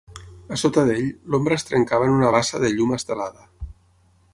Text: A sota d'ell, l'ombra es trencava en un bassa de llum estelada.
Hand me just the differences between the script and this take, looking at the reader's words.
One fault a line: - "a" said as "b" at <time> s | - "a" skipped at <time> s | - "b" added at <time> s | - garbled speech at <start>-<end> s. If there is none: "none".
- "un" said as "una" at 2.2 s